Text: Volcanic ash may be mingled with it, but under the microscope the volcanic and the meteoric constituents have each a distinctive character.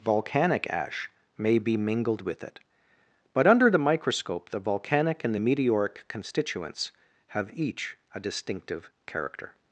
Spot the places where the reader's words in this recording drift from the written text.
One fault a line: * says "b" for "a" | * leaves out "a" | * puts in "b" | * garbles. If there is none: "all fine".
all fine